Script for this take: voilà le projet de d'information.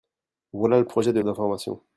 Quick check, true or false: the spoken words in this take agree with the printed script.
true